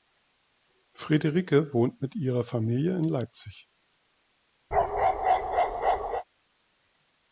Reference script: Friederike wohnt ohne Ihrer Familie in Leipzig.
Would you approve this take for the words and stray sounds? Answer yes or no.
no